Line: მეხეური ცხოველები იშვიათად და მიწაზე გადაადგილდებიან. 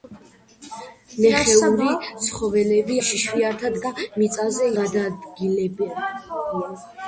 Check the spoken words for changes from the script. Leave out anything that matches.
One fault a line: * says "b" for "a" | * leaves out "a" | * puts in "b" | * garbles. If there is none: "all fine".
all fine